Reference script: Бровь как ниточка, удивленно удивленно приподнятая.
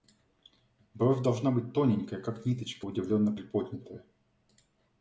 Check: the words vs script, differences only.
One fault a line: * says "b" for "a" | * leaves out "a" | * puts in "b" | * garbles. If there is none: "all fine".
* puts in "должна быть тоненькая"
* leaves out "удивленно"